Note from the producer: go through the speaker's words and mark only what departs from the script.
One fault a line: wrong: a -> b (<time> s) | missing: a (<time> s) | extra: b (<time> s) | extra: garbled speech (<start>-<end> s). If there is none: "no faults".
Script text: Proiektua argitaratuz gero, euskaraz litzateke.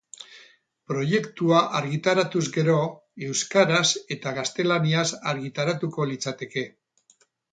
extra: eta gaztelaniaz argitaratuko (4.2 s)